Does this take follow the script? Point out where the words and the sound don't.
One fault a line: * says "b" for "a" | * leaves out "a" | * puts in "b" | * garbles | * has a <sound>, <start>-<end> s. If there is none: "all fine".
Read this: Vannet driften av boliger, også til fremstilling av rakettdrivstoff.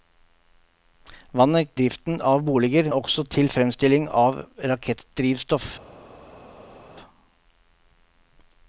all fine